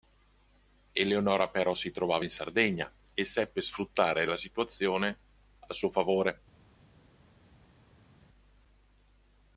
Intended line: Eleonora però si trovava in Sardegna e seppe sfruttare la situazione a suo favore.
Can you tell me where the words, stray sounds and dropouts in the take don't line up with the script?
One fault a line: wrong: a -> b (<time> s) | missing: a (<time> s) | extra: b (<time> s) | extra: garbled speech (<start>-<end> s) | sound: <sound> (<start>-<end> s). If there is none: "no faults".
no faults